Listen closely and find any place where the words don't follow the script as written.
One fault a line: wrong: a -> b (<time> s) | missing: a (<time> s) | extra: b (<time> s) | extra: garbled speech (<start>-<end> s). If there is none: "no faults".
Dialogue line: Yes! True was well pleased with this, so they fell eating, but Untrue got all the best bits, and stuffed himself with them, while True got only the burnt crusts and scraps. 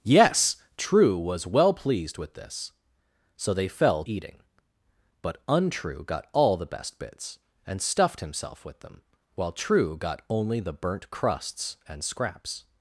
no faults